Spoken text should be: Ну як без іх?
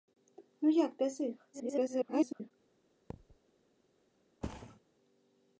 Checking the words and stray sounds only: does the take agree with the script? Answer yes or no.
no